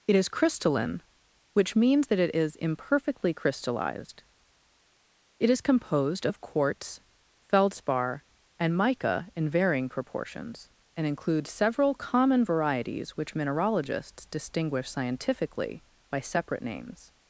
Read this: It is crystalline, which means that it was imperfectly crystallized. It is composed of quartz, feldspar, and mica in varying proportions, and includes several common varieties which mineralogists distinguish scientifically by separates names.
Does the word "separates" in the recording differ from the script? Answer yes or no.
yes